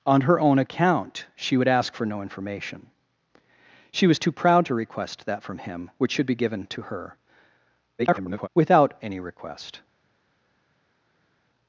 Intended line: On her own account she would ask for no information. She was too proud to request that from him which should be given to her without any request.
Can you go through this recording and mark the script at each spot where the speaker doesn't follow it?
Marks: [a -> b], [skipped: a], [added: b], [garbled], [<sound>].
On her own account she would ask for no information. She was too proud to request that from him which should be given to her [garbled] without any request.